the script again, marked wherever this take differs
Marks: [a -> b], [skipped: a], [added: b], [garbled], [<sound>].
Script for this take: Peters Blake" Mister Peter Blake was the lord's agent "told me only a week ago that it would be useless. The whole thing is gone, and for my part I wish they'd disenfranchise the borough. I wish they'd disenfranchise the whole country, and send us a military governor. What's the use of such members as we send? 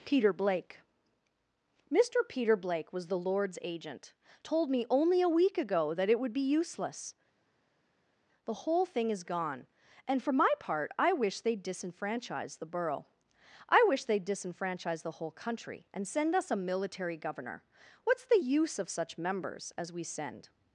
[Peters -> Peter] Blake" Mister Peter Blake was the lord's agent "told me only a week ago that it would be useless. The whole thing is gone, and for my part I wish they'd disenfranchise the borough. I wish they'd disenfranchise the whole country, and send us a military governor. What's the use of such members as we send?